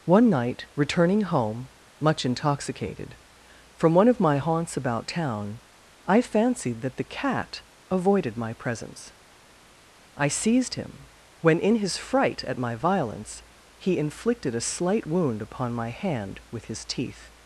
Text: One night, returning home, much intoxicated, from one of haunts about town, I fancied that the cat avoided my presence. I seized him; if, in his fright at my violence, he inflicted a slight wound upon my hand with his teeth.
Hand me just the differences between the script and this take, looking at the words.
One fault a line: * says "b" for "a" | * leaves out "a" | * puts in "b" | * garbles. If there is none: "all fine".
* puts in "my"
* says "when" for "if"